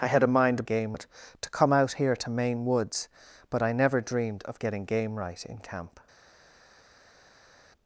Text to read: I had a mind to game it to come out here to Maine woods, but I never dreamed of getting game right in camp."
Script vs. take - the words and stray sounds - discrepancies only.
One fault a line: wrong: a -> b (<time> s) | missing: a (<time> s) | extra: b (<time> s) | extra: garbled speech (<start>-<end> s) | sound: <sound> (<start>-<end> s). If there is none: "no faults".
no faults